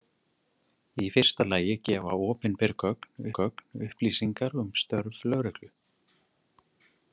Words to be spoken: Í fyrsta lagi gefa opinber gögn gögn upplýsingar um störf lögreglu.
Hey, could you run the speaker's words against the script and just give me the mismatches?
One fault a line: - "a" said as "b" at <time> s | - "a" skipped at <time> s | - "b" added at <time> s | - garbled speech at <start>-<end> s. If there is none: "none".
none